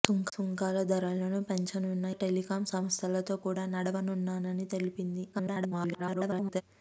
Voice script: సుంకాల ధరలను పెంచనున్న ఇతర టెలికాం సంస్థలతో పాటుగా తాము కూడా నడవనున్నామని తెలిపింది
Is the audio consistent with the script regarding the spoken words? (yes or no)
no